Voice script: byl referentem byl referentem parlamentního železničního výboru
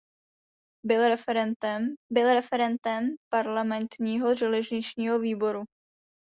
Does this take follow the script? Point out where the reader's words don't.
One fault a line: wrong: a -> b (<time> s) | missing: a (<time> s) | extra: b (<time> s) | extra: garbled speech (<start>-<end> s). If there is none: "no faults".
no faults